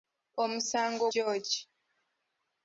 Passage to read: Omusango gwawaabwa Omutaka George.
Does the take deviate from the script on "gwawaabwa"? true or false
true